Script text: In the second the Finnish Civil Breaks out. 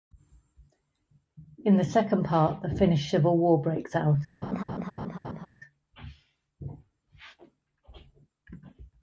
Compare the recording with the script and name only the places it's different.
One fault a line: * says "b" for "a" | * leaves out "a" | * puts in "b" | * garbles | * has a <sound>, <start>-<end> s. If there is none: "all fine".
* puts in "part"
* puts in "War"
* has a laugh, 4.4-5.5 s